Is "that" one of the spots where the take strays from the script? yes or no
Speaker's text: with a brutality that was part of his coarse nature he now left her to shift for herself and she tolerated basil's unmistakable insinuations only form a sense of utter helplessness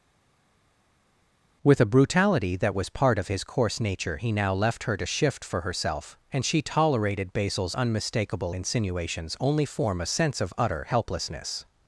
no